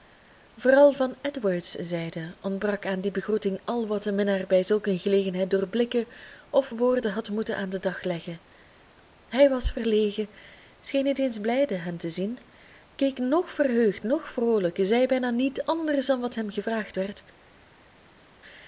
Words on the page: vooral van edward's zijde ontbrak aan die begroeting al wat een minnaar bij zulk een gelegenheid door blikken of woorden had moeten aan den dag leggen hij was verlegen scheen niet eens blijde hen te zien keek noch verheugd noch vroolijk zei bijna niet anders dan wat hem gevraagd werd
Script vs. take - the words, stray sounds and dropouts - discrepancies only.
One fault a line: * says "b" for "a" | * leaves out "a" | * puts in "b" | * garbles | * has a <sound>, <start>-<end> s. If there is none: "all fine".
all fine